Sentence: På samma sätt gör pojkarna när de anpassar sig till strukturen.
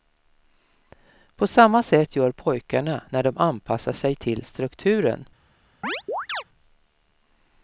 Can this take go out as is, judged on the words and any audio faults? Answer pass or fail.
fail